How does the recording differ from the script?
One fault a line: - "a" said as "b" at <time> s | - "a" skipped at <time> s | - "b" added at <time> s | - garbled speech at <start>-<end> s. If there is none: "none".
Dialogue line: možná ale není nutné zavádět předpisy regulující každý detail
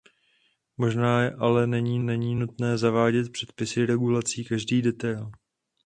- "není" added at 2.0 s